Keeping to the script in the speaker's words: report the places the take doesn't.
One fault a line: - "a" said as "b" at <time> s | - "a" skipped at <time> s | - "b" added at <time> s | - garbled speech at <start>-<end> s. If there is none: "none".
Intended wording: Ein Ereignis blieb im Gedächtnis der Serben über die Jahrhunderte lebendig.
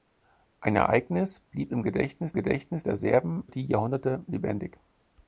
- "Gedächtnis" added at 2.3 s
- "über" skipped at 3.4 s